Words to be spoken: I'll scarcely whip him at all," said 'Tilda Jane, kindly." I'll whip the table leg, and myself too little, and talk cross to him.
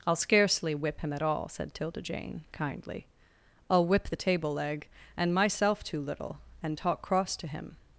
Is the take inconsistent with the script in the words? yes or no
no